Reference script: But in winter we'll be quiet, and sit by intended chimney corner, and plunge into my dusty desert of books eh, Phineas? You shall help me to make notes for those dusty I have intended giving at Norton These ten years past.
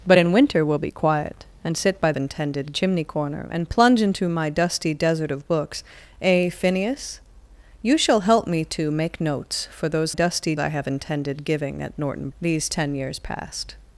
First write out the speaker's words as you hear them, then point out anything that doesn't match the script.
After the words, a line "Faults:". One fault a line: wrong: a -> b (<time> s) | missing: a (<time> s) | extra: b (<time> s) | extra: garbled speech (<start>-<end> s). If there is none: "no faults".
But in winter we'll be quiet, and sit by intended chimney corner, and plunge into my dusty desert of books eh, Phineas? You shall help me to make notes for those dusty I have intended giving at Norton These ten years past.
Faults:
no faults